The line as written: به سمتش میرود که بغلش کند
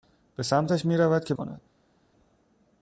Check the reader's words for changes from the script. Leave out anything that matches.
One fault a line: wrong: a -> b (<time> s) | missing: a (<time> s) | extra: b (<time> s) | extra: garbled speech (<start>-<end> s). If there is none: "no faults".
missing: بغلش (1.3 s)